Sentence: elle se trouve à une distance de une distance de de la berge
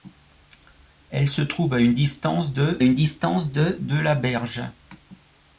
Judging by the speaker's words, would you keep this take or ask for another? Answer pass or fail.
pass